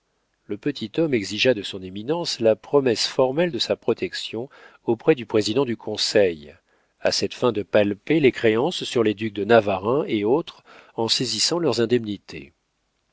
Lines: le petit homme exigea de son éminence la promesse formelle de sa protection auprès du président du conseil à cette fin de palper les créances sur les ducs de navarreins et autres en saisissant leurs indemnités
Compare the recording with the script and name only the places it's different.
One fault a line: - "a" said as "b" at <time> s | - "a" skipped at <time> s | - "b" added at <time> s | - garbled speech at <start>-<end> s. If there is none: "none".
none